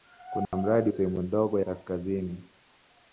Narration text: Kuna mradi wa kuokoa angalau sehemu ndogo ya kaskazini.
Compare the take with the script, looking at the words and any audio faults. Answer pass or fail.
fail